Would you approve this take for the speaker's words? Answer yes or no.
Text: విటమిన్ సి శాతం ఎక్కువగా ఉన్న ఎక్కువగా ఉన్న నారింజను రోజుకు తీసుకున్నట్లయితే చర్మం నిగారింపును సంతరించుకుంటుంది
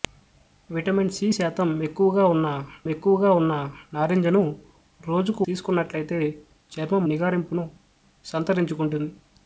yes